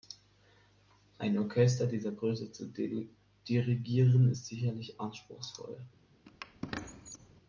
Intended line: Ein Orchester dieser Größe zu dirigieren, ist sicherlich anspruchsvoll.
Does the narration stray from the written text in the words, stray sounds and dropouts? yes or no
yes